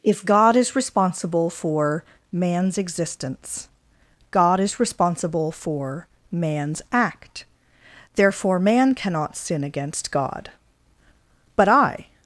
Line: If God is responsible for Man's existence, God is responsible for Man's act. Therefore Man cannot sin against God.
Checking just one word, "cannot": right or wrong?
right